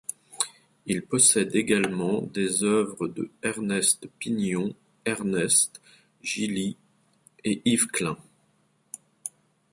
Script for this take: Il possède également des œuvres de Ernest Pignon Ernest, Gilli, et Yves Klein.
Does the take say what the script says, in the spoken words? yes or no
yes